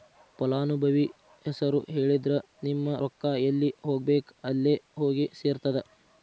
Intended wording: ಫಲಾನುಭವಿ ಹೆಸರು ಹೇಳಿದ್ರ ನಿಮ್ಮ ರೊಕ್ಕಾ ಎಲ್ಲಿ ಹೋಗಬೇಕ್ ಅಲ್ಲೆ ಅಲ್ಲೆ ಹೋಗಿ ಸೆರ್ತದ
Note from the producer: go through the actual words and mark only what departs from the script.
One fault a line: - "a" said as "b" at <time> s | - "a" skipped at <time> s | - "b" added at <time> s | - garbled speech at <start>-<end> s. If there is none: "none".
- "ಅಲ್ಲೆ" skipped at 4.7 s